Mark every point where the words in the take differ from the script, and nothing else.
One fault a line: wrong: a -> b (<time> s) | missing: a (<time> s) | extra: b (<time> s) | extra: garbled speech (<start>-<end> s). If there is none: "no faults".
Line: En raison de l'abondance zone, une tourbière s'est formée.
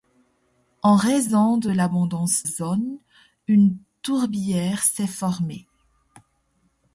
no faults